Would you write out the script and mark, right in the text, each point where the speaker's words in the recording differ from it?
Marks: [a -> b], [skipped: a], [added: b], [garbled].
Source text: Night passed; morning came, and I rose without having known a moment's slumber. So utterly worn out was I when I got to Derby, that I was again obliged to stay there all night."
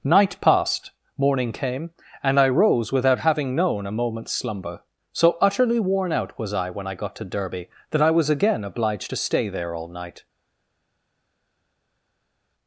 Night passed; morning came, and I rose without having known a moment's slumber. So utterly worn out was I when I got to Derby, that I was again obliged to stay there all night."